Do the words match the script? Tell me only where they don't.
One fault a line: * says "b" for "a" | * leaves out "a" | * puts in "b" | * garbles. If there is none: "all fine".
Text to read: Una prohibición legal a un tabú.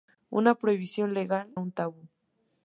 all fine